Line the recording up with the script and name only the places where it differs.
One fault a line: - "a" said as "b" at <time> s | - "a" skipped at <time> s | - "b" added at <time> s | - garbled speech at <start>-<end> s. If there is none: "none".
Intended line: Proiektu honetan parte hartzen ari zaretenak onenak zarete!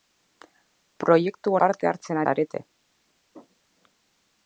- "honetan" skipped at 1.5 s
- "ari zaretenak onenak" skipped at 2.2 s